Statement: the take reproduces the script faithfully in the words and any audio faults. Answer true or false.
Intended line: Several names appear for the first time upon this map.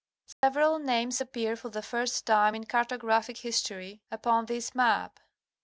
false